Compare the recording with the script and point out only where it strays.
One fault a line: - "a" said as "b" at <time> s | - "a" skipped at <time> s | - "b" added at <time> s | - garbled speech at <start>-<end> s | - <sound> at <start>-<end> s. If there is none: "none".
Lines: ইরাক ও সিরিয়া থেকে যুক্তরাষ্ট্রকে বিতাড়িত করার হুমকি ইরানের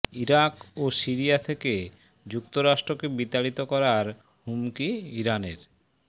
none